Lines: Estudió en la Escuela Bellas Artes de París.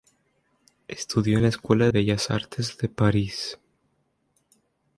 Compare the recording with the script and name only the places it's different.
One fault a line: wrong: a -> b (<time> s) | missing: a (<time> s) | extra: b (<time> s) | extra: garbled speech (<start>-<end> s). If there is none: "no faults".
no faults